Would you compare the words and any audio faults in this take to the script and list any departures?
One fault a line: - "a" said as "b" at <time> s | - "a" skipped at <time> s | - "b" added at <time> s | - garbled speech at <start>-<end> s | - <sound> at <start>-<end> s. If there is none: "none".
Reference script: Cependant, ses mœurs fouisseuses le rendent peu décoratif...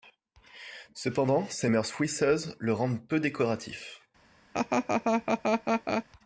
- laugh at 4.5-6.0 s